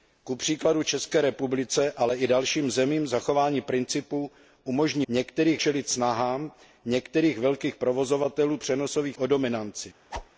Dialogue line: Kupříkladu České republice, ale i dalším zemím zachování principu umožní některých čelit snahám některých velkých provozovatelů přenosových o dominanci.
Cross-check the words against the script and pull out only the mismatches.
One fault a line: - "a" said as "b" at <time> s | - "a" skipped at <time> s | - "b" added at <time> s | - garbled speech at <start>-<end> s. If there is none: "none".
none